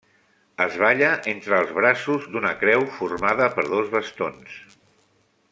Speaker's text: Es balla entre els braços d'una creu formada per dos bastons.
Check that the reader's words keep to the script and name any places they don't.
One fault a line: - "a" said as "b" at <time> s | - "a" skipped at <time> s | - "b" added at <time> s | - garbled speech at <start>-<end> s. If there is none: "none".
none